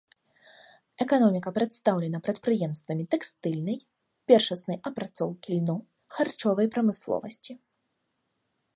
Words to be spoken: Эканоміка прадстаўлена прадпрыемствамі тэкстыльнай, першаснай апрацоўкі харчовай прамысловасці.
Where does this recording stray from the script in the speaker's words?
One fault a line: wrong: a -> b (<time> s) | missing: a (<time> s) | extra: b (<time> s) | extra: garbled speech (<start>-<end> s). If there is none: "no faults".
extra: льну (5.6 s)